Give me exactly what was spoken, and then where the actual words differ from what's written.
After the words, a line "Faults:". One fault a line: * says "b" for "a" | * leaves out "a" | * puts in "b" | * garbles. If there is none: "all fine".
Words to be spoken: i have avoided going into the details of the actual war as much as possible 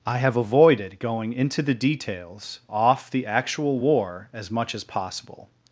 i have avoided going into the details off the actual war as much as possible
Faults:
* says "off" for "of"